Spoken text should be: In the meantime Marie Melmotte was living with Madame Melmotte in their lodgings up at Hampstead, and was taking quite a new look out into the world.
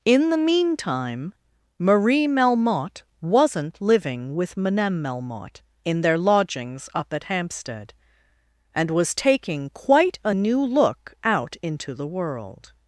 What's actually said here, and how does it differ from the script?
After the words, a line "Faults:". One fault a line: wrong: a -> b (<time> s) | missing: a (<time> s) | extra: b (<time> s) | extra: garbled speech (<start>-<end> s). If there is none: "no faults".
In the meantime Marie Melmotte wasn't living with Madame Melmotte in their lodgings up at Hampstead, and was taking quite a new look out into the world.
Faults:
wrong: was -> wasn't (3.2 s)